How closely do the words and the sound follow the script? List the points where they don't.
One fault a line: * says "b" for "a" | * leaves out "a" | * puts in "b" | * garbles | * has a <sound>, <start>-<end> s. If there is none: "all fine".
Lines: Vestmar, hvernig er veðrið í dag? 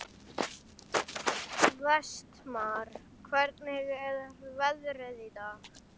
all fine